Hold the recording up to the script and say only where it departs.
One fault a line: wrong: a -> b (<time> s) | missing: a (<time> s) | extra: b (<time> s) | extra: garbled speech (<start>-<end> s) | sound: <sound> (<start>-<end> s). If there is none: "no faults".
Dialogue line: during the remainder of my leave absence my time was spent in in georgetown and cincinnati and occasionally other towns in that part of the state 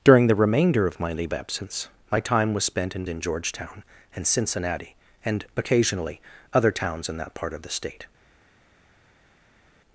no faults